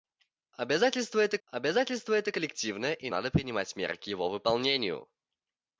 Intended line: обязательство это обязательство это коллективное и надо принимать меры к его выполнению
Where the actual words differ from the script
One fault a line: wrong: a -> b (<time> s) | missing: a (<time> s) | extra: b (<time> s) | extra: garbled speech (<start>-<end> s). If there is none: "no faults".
no faults